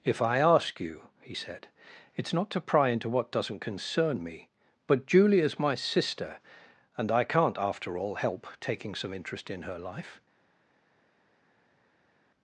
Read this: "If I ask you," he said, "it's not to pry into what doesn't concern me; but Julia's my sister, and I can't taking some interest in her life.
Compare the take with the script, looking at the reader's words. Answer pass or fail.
fail